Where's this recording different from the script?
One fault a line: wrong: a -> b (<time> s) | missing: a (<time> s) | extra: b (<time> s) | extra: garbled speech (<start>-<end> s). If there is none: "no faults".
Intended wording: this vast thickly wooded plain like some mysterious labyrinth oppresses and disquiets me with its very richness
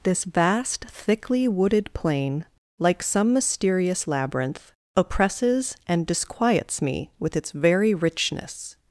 no faults